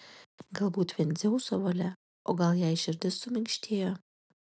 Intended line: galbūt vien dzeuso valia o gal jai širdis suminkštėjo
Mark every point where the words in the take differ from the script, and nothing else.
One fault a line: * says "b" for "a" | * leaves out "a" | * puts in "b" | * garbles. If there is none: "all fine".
all fine